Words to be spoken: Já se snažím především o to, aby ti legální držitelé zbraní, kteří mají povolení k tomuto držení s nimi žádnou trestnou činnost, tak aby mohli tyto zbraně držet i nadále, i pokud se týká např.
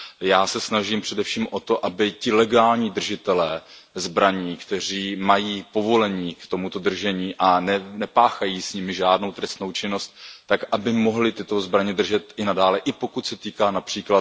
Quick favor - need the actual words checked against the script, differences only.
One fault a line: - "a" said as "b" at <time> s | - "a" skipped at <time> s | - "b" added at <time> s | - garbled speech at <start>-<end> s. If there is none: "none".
- "a nepáchají" added at 7.4 s